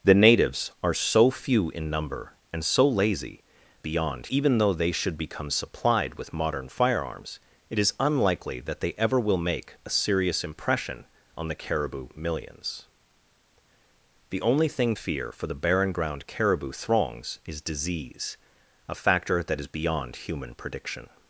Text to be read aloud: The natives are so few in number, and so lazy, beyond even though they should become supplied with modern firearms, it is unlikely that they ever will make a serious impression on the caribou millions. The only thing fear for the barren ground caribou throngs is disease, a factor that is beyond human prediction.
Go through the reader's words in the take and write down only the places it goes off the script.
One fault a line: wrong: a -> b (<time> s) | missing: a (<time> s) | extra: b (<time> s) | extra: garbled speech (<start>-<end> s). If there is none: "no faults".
no faults